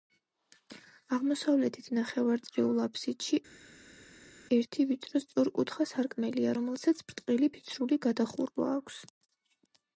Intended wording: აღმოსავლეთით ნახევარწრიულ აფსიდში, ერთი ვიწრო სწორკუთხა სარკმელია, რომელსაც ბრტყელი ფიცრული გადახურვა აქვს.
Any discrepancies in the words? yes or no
no